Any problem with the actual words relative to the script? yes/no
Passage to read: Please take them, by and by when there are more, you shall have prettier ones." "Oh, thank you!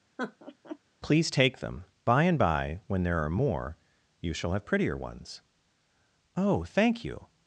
no